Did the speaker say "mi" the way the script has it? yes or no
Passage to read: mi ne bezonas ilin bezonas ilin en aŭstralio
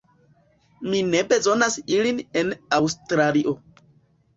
yes